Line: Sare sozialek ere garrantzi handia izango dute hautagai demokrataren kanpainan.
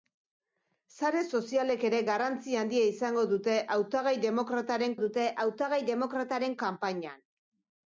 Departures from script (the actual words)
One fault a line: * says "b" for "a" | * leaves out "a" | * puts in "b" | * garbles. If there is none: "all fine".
* puts in "dute hautagai demokrataren"